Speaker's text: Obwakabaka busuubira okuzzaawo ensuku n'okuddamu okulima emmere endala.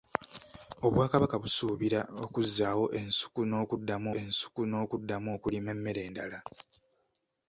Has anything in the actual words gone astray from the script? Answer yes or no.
yes